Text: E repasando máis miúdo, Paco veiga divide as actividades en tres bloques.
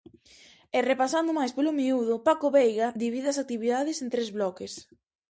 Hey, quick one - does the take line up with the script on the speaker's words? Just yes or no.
no